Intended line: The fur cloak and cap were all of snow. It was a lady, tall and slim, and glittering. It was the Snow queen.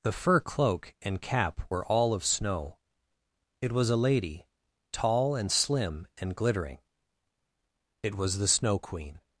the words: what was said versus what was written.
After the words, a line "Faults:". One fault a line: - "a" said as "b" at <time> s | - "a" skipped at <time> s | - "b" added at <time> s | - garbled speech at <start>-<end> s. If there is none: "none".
The fur cloak and cap were all of snow. It was a lady, tall and slim, and glittering. It was the Snow queen.
Faults:
none